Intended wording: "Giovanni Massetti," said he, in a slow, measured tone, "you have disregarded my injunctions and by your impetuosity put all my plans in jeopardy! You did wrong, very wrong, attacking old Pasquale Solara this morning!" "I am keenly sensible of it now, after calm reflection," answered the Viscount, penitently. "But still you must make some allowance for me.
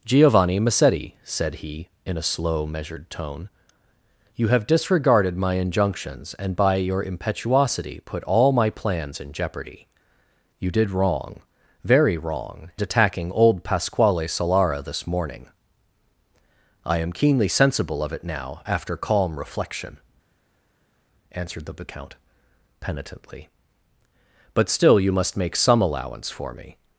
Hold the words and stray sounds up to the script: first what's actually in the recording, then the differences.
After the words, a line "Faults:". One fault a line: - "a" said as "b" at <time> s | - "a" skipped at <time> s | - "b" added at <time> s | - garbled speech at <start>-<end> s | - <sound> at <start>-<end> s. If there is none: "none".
"Giovanni Massetti," said he, in a slow, measured tone, "you have disregarded my injunctions and by your impetuosity put all my plans in jeopardy! You did wrong, very wrong, attacking old Pasquale Solara this morning!" "I am keenly sensible of it now, after calm reflection," answered the Viscount, penitently. "But still you must make some allowance for me.
Faults:
none